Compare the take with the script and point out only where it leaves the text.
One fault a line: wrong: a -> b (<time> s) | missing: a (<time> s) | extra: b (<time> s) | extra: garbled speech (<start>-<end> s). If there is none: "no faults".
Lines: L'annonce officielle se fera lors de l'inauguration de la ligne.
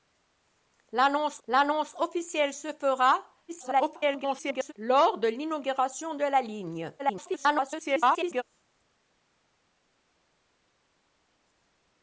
extra: l'annonce (1.5 s)
extra: garbled speech (3.5-4.7 s)
extra: garbled speech (7.0-8.4 s)